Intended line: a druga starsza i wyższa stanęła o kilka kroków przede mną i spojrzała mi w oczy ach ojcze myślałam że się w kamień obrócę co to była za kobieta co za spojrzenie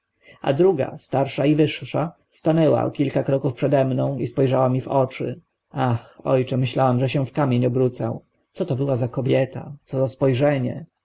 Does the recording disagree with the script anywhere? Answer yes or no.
no